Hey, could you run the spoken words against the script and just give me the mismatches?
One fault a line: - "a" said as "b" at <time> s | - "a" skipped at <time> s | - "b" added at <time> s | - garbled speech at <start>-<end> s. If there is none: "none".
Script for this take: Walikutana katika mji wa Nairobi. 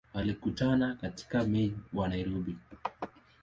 - "mji" skipped at 1.4 s